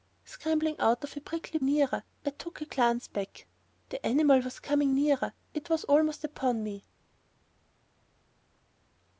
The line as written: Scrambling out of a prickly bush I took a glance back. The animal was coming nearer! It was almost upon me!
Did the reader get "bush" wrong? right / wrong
wrong